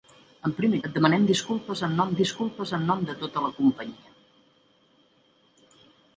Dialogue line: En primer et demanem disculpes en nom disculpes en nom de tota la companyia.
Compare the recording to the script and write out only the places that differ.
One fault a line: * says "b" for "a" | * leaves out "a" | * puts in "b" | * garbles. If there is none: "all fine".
all fine